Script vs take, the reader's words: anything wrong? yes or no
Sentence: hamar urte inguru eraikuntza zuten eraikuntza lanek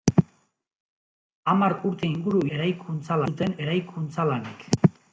no